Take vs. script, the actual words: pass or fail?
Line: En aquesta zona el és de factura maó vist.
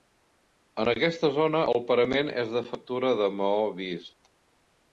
fail